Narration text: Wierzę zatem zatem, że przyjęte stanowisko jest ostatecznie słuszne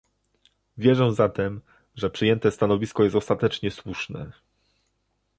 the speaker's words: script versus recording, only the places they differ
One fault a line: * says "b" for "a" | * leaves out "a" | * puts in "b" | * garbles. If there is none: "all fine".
* leaves out "zatem"